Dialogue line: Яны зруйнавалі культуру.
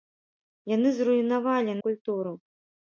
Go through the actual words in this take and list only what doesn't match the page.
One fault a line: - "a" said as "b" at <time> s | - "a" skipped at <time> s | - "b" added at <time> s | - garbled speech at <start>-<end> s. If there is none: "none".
none